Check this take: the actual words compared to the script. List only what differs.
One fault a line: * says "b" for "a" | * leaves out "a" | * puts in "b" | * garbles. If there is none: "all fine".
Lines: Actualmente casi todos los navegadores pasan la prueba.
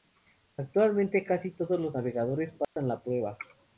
all fine